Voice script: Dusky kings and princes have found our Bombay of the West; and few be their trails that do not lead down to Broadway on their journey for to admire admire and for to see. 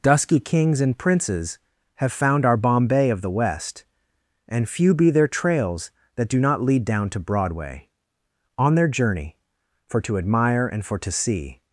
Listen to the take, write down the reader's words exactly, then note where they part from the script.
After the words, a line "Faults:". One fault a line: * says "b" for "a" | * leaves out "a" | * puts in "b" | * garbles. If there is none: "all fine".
Dusky kings and princes have found our Bombay of the West; and few be their trails that do not lead down to Broadway on their journey for to admire and for to see.
Faults:
* leaves out "admire"